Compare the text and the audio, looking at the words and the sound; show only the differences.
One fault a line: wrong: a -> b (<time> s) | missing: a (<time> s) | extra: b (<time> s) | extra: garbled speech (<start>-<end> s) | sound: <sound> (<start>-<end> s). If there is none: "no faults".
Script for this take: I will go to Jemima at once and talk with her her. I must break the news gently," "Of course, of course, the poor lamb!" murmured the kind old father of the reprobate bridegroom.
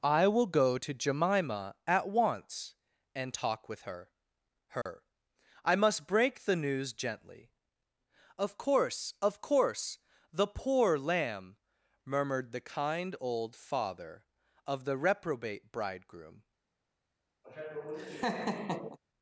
sound: dropout (4.8-4.9 s)
sound: laugh (17.4-19.0 s)